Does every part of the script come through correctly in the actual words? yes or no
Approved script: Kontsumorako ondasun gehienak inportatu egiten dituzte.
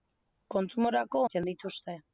no